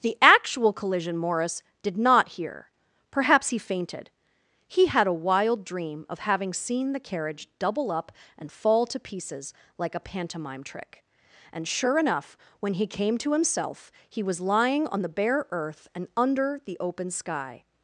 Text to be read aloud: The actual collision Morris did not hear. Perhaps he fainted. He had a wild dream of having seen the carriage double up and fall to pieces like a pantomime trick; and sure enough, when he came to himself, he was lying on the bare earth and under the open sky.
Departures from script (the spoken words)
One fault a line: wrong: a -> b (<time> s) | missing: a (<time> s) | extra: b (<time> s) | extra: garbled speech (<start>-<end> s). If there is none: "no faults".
no faults